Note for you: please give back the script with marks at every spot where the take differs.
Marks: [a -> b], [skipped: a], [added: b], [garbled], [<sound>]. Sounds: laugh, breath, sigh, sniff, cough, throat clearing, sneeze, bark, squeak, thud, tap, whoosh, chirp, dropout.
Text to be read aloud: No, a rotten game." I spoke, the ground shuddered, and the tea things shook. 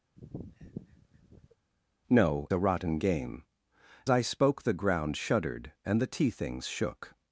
[sniff] No, a rotten game." I spoke, the ground shuddered, and the tea things shook.